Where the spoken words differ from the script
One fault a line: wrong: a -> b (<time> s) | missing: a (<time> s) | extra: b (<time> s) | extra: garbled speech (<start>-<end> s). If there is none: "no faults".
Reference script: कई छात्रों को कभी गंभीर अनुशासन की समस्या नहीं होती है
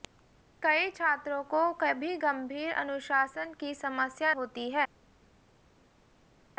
missing: नहीं (4.3 s)